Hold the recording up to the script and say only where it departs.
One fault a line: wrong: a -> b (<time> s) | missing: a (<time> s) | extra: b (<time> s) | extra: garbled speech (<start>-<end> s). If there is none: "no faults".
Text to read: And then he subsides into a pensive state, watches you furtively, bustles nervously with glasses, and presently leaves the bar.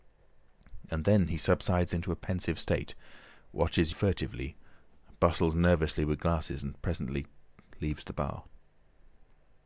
missing: you (3.9 s)